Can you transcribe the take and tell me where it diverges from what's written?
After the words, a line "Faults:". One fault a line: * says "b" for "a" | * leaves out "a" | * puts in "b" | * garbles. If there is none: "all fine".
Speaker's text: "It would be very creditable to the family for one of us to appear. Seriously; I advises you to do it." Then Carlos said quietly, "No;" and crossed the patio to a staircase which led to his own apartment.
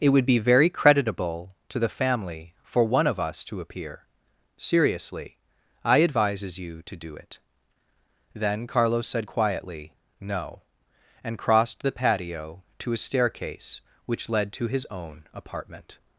"It would be very creditable to the family for one of us to appear. Seriously; I advises you to do it." Then Carlos said quietly, "No;" and crossed the patio to a staircase which led to his own apartment.
Faults:
all fine